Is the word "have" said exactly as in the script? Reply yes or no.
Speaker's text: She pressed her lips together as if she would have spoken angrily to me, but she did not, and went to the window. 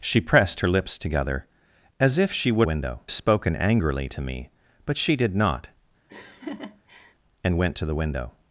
no